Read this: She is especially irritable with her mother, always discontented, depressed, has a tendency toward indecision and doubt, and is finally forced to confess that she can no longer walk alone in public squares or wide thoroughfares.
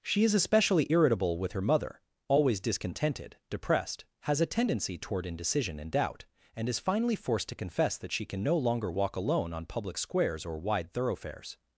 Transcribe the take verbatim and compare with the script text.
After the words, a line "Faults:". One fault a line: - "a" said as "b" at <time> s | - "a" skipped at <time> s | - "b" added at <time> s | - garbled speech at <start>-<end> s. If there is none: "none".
She is especially irritable with her mother, always discontented, depressed, has a tendency toward indecision and doubt, and is finally forced to confess that she can no longer walk alone on public squares or wide thoroughfares.
Faults:
- "in" said as "on" at 9.5 s